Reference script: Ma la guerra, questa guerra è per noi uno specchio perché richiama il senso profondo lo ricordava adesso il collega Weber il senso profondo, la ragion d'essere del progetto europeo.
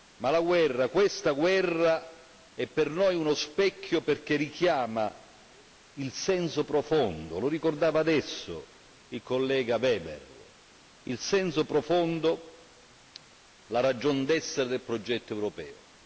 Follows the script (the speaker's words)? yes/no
yes